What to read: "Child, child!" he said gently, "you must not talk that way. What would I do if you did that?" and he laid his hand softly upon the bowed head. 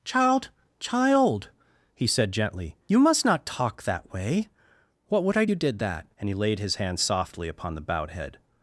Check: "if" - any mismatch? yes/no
yes